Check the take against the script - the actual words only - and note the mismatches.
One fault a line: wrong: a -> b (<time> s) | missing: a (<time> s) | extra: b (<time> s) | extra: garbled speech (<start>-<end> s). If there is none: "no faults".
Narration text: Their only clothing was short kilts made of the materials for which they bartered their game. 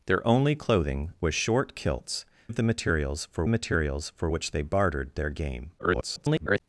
missing: made (2.2 s)
extra: materials for (3.5 s)
extra: garbled speech (5.8-6.6 s)